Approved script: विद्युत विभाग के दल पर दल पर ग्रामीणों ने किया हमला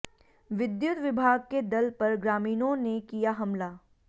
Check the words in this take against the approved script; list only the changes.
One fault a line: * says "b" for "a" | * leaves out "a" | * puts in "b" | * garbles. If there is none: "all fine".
* leaves out "दल पर"